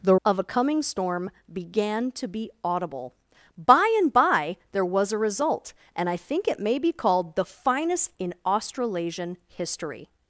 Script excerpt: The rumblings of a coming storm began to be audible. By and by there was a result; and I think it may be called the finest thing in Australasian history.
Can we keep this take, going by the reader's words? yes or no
no